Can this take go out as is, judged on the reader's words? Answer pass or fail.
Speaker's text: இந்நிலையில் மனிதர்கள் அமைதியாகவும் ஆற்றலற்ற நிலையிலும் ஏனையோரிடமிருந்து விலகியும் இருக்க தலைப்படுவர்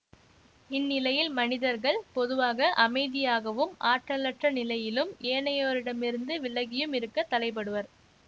fail